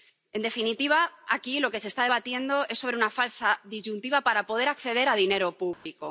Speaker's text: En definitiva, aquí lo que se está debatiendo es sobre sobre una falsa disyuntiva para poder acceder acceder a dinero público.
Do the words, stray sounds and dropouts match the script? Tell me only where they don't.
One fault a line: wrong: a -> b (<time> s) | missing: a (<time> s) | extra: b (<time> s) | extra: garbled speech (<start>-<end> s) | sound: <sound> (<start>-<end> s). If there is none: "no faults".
missing: sobre (3.0 s)
missing: acceder (5.1 s)
sound: dropout (5.7-5.9 s)